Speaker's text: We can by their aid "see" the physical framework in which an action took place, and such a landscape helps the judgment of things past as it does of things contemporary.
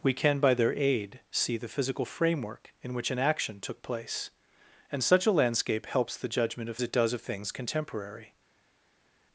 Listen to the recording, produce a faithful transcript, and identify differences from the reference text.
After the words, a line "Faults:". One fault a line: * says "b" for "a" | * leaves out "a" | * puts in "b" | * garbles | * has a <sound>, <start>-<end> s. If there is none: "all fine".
We can by their aid "see" the physical framework in which an action took place, and such a landscape helps the judgment of it does of things contemporary.
Faults:
* leaves out "things past as"